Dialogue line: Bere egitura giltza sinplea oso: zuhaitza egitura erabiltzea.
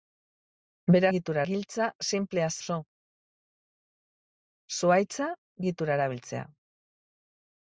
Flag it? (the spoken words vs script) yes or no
no